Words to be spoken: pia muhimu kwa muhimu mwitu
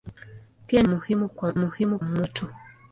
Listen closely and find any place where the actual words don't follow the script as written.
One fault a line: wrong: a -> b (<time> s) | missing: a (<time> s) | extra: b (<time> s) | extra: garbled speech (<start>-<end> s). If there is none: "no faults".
no faults